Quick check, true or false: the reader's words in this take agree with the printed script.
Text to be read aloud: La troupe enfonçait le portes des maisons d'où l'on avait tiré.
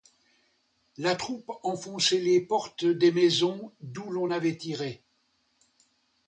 false